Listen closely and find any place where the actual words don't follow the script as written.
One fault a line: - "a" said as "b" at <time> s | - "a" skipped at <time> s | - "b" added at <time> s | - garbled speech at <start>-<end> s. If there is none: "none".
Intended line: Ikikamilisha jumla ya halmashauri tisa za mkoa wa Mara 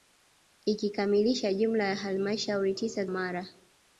- "za mkoa wa" skipped at 3.1 s